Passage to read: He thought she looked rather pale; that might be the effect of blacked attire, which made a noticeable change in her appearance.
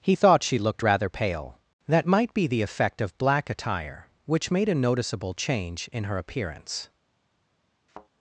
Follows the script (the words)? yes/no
no